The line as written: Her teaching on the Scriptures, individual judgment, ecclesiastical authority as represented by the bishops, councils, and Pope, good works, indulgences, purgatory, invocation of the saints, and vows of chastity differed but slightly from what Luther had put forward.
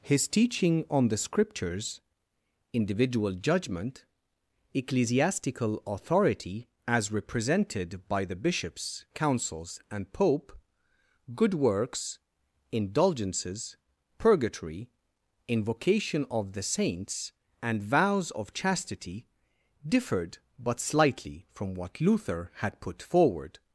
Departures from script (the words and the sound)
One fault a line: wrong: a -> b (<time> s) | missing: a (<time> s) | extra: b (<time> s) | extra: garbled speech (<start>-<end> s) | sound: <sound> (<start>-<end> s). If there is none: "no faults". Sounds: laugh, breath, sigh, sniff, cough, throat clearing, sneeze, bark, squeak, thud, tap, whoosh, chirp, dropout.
wrong: Her -> His (0.0 s)